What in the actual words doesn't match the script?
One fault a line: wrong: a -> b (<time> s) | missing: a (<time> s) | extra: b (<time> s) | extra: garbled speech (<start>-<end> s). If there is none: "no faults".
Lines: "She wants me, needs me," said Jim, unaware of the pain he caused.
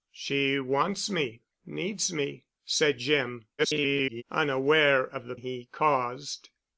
extra: garbled speech (3.6-4.2 s)
missing: pain (5.3 s)